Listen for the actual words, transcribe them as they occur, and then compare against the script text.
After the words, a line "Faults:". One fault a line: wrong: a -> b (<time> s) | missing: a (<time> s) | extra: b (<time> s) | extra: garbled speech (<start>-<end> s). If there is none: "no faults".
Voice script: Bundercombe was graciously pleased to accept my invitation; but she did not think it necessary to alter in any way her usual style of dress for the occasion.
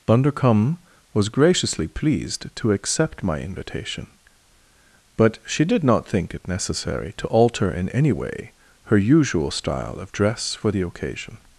Bundercombe was graciously pleased to accept my invitation; but she did not think it necessary to alter in any way her usual style of dress for the occasion.
Faults:
no faults